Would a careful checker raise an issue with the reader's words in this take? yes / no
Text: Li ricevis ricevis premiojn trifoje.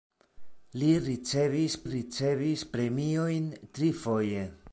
no